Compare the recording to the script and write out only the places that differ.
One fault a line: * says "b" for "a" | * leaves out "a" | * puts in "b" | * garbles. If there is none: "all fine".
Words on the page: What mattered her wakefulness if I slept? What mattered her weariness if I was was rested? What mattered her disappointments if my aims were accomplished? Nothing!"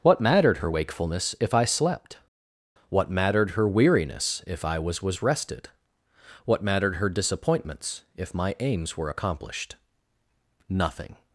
all fine